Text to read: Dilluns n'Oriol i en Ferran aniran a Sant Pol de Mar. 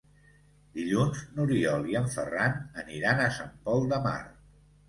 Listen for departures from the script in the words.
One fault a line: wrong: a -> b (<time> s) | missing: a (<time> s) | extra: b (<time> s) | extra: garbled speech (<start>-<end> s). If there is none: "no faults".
no faults